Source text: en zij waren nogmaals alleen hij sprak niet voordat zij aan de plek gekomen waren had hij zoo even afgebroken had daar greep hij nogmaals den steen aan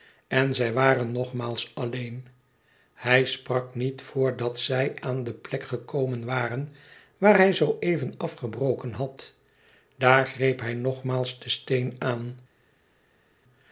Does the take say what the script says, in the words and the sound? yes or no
no